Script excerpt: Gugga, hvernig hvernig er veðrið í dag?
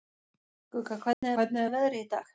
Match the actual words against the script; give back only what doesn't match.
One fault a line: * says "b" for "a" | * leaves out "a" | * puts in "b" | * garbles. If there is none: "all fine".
all fine